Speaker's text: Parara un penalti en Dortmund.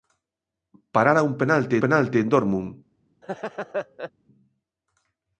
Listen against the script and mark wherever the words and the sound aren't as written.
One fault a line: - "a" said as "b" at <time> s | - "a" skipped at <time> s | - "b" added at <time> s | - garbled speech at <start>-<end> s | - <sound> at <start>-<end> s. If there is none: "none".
- "penalti" added at 1.8 s
- laugh at 3.2-4.1 s